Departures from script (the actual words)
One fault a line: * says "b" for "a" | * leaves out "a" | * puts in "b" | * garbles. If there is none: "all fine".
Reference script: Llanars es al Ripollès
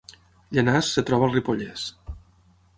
* puts in "troba"